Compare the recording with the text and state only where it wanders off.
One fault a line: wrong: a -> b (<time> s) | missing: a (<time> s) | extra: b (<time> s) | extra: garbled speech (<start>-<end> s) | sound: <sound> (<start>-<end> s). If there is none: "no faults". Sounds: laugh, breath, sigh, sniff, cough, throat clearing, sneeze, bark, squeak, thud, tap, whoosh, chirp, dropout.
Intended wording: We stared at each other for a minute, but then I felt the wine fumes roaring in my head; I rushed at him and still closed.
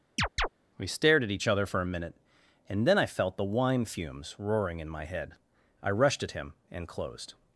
sound: chirp (0.2-0.5 s)
wrong: but -> and (2.7 s)
missing: still (6.9 s)